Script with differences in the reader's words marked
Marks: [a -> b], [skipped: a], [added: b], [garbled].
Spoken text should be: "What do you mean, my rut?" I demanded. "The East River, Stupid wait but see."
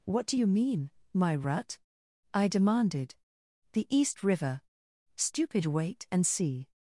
"What do you mean, my rut?" I demanded. "The East River, Stupid wait [but -> and] see."